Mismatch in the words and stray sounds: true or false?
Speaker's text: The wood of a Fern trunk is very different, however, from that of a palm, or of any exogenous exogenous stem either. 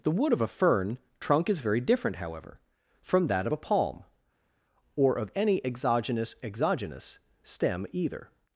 false